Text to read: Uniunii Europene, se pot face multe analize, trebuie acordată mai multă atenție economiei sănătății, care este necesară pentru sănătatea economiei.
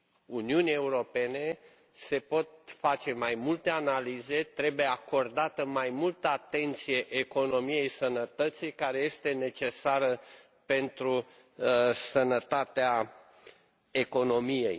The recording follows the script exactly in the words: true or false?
false